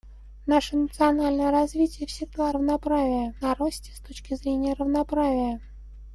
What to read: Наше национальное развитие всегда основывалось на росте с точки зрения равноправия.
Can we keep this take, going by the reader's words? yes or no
no